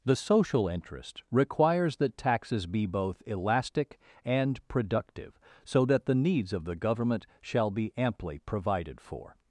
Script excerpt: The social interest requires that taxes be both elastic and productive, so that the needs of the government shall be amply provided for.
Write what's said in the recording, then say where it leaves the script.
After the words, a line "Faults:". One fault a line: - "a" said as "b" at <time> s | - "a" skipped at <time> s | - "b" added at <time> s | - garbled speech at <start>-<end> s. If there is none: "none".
The social interest requires that taxes be both elastic and productive, so that the needs of the government shall be amply provided for.
Faults:
none